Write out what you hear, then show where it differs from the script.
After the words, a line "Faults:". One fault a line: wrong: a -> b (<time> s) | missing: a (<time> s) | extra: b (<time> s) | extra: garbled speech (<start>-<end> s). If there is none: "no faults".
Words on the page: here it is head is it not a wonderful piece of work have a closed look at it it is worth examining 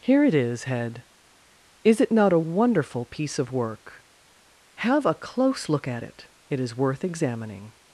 here it is head is it not a wonderful piece of work have a close look at it it is worth examining
Faults:
wrong: closed -> close (5.1 s)